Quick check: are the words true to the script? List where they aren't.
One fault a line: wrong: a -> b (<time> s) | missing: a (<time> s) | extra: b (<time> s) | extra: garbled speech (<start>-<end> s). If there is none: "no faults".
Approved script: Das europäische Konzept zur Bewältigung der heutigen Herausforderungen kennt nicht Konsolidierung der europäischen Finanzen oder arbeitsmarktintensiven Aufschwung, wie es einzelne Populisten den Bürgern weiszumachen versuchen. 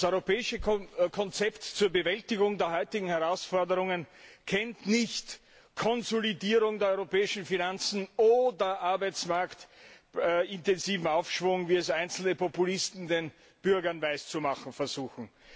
no faults